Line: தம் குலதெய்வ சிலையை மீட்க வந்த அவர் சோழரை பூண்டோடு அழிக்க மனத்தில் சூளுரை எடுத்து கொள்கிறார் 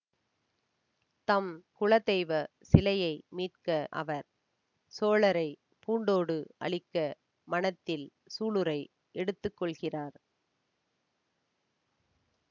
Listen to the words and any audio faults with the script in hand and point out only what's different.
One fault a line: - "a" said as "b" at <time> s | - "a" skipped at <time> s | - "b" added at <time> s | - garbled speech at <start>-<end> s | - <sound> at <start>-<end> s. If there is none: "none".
- "வந்த" skipped at 3.7 s